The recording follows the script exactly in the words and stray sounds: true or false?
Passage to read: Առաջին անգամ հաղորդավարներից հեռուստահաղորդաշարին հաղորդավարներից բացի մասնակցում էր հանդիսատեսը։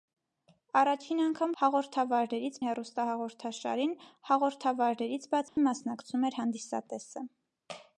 false